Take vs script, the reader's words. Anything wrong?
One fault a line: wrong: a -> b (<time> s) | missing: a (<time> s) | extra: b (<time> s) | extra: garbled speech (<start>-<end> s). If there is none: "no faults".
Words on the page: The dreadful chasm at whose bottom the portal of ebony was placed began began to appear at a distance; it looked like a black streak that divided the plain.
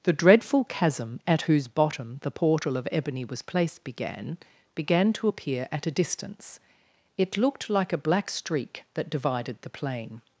no faults